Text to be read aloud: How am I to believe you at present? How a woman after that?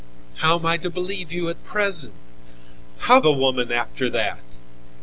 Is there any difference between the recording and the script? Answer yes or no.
no